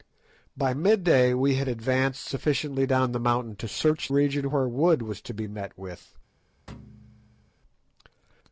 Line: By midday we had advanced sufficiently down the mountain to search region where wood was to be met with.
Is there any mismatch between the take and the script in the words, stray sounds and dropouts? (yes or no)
yes